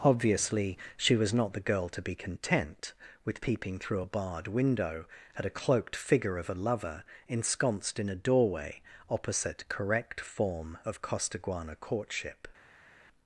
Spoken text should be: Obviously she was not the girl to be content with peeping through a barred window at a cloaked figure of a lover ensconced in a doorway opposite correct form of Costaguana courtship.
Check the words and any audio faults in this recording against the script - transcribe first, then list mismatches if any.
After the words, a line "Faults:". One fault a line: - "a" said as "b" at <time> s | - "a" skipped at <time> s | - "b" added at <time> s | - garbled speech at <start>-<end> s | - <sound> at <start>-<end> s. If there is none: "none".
Obviously she was not the girl to be content with peeping through a barred window at a cloaked figure of a lover ensconced in a doorway opposite correct form of Costaguana courtship.
Faults:
none